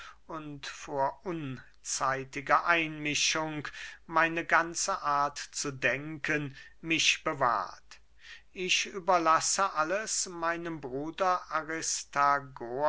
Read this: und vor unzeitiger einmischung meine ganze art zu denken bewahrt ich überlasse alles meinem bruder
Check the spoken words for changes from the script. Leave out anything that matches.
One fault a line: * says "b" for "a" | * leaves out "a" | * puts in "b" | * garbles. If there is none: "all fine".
* puts in "mich"